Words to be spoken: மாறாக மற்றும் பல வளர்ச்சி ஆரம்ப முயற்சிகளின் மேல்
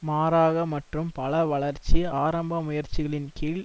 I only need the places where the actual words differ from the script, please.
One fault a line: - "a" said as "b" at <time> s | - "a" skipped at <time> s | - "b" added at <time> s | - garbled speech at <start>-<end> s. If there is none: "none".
- "மேல்" said as "கீழ்" at 3.3 s